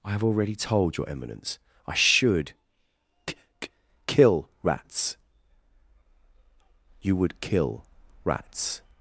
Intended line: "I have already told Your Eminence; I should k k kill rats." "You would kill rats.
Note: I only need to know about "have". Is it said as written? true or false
true